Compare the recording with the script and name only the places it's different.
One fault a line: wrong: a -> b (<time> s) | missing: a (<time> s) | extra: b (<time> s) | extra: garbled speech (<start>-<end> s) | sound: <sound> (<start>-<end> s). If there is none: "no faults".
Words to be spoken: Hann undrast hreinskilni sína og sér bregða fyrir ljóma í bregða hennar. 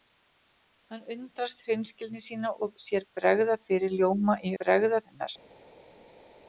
no faults